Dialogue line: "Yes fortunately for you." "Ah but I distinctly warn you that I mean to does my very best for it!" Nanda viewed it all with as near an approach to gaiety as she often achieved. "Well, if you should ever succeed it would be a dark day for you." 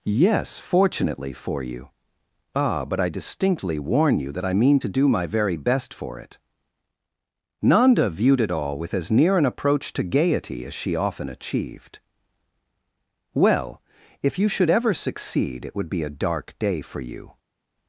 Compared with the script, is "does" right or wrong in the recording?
wrong